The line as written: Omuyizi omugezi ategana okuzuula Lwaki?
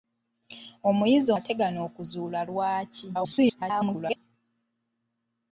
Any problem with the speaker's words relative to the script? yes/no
yes